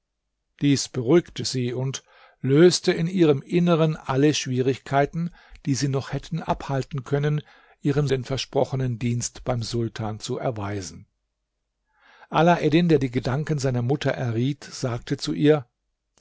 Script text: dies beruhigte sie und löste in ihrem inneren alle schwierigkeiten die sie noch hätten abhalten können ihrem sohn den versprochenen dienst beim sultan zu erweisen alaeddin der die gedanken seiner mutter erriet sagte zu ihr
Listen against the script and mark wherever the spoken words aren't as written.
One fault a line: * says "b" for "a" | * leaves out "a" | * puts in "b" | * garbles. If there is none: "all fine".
* leaves out "sohn"